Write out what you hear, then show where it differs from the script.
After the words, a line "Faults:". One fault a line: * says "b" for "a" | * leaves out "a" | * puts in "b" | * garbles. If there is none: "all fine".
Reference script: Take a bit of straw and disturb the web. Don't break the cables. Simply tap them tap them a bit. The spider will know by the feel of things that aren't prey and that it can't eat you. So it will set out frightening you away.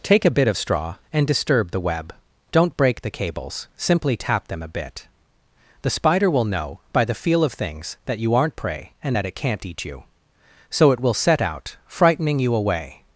Take a bit of straw and disturb the web. Don't break the cables. Simply tap them a bit. The spider will know by the feel of things that you aren't prey and that it can't eat you. So it will set out frightening you away.
Faults:
* leaves out "tap them"
* puts in "you"